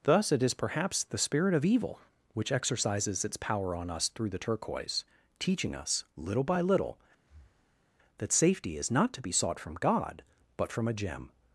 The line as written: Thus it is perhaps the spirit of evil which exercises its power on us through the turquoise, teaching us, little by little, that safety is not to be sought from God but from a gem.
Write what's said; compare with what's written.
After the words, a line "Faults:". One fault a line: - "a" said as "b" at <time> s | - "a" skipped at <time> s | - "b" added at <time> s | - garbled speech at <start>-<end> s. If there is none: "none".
Thus it is perhaps the spirit of evil which exercises its power on us through the turquoise, teaching us, little by little, that safety is not to be sought from God but from a gem.
Faults:
none